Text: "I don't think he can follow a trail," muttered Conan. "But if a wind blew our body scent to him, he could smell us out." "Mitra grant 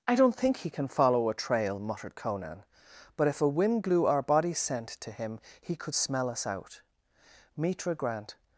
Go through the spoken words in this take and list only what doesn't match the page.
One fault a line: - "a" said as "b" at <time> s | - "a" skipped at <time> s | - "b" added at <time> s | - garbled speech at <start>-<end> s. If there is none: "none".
none